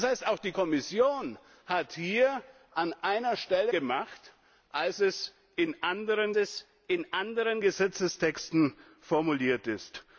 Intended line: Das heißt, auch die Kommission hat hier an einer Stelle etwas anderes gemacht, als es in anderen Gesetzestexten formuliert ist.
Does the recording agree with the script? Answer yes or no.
no